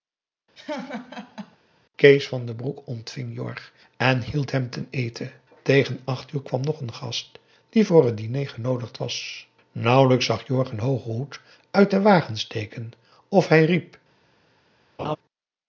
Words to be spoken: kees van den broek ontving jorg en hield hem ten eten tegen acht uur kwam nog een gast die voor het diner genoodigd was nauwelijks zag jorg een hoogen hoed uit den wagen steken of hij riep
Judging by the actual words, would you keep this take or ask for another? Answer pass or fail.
pass